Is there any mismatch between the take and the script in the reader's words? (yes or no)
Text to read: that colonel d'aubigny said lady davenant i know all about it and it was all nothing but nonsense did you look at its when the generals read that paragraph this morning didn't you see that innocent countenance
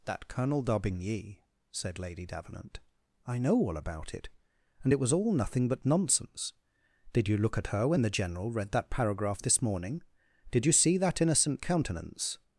yes